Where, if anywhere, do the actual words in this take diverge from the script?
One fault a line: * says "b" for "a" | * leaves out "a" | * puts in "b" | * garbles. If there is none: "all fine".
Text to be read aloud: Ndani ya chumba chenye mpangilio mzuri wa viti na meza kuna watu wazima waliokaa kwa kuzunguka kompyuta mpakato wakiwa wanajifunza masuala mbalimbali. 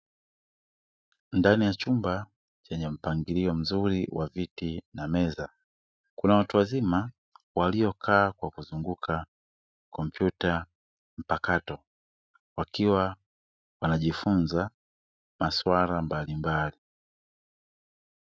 all fine